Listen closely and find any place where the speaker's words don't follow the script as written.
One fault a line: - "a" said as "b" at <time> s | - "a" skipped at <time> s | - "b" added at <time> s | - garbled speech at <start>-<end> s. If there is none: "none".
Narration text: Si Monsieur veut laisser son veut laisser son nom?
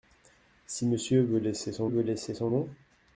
none